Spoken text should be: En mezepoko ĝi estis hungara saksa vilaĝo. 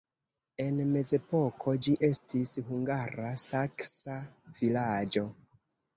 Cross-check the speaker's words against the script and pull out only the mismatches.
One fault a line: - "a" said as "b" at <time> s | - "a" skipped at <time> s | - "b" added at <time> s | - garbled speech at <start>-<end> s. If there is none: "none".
none